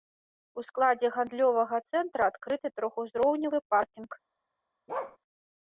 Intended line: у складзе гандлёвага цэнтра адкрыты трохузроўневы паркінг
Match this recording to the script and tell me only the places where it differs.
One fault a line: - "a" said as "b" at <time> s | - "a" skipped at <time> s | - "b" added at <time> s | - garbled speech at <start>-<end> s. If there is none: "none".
none